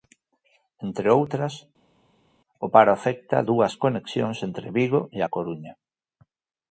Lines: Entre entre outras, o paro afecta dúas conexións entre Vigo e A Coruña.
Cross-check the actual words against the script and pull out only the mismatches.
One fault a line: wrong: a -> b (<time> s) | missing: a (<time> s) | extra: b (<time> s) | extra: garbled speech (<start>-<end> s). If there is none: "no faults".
missing: entre (1.1 s)